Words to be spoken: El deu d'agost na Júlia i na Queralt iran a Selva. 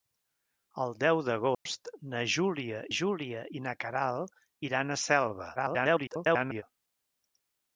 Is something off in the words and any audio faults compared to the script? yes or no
yes